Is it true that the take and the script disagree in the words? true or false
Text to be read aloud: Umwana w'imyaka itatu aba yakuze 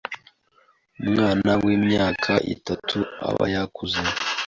false